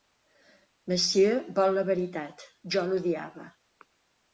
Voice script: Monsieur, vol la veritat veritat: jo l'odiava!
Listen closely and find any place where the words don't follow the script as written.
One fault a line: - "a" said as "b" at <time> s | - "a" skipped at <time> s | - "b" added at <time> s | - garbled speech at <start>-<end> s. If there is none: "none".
- "veritat" skipped at 2.5 s